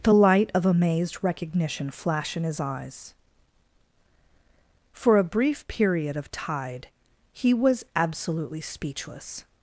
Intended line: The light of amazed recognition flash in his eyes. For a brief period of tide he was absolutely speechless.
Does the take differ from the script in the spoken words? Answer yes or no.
no